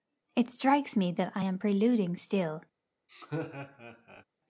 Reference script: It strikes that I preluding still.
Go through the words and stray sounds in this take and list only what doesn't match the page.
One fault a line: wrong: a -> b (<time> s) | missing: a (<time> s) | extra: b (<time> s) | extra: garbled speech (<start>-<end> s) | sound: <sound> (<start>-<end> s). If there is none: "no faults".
extra: me (1.0 s)
extra: am (1.4 s)
sound: laugh (3.1-4.2 s)